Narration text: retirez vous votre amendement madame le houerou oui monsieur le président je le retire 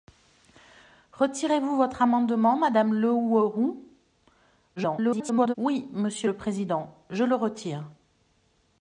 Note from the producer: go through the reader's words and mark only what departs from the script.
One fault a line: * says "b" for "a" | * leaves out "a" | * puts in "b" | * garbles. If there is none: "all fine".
* garbles